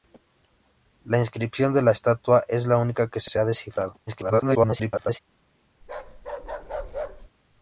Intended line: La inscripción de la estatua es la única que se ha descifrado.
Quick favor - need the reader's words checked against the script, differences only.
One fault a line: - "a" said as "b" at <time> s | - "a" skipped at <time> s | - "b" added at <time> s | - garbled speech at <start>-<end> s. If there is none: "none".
- "se" added at 3.3 s
- garbled speech at 4.1-5.2 s